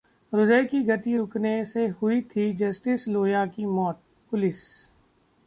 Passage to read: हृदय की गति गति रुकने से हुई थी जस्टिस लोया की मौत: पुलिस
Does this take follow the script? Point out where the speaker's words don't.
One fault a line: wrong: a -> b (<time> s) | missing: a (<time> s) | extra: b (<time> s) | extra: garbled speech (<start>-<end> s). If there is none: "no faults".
missing: गति (1.1 s)